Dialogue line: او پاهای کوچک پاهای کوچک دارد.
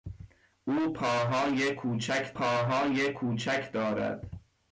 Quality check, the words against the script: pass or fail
pass